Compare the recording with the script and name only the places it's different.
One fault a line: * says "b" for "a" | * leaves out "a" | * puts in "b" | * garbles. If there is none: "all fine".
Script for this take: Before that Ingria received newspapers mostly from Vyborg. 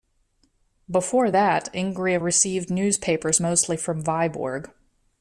all fine